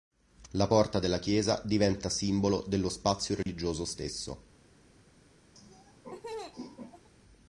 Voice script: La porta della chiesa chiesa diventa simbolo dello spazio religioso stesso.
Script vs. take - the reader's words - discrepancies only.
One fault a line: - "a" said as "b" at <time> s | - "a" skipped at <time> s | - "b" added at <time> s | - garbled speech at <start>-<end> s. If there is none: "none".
- "chiesa" skipped at 1.6 s